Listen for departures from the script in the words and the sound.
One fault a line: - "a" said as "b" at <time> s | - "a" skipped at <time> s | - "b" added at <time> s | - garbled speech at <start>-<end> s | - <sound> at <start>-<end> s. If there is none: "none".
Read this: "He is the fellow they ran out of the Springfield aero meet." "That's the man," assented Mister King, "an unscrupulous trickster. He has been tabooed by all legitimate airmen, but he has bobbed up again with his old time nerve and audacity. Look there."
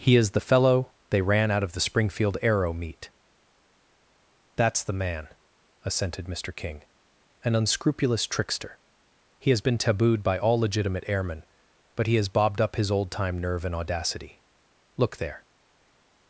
- "again with" skipped at 12.8 s